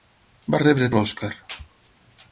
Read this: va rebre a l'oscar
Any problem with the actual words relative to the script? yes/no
no